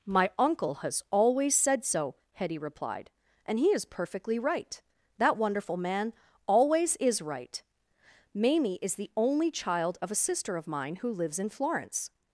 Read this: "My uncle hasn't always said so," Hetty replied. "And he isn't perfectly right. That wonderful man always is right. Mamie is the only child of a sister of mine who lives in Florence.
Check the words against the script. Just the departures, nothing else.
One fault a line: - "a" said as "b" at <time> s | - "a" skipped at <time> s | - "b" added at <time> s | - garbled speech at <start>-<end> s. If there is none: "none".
- "hasn't" said as "has" at 0.8 s
- "isn't" said as "is" at 3.7 s